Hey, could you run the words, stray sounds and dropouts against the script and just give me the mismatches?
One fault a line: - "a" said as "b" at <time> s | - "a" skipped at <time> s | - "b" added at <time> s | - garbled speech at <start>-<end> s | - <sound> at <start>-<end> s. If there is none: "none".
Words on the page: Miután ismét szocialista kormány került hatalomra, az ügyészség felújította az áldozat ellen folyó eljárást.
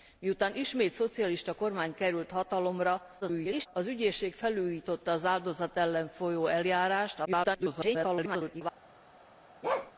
- garbled speech at 3.2-3.7 s
- garbled speech at 7.2-8.6 s
- bark at 9.6-9.9 s